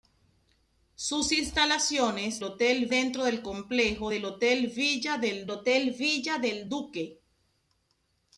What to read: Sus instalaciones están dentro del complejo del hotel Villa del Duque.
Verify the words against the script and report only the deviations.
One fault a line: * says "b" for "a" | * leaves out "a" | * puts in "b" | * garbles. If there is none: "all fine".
* says "hotel" for "están"
* puts in "hotel Villa del"